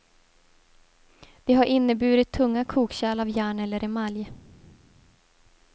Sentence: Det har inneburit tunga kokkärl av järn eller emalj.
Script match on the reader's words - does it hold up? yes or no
yes